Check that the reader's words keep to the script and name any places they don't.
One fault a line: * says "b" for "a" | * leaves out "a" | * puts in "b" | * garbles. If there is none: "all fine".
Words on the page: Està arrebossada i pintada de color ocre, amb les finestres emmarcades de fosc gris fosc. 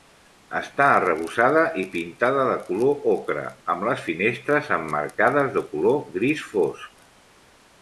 * says "color" for "fosc"